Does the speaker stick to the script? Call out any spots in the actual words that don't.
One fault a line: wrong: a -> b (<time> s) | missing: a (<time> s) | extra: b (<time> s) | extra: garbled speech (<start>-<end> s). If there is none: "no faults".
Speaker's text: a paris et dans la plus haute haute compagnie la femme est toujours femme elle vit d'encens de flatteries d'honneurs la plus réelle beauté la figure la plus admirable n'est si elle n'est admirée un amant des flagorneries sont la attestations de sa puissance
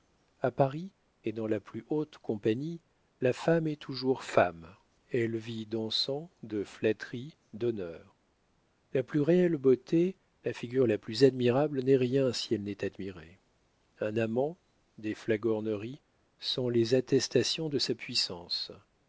missing: haute (2.2 s)
extra: rien (12.0 s)
wrong: la -> les (16.7 s)